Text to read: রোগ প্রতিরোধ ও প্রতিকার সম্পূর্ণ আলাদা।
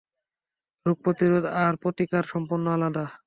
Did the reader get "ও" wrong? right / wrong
wrong